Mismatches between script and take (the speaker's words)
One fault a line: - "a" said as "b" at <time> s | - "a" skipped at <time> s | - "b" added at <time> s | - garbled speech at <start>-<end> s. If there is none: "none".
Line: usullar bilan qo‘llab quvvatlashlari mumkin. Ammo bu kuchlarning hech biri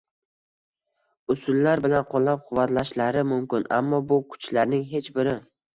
none